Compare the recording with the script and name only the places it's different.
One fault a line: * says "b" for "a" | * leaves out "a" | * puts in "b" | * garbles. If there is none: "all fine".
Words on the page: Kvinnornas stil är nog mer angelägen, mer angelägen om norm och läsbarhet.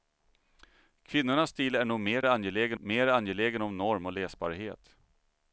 all fine